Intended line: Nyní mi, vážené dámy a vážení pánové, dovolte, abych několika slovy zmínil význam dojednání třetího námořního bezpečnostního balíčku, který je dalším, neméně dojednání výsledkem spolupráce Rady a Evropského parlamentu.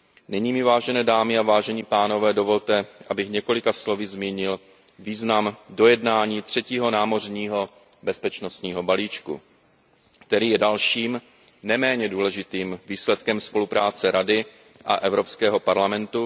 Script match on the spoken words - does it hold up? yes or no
no